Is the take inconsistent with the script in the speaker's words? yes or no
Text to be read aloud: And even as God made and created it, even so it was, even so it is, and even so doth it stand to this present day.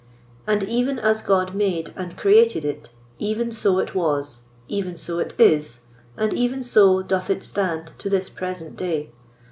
no